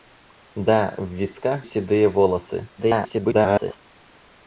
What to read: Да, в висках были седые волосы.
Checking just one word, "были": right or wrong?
wrong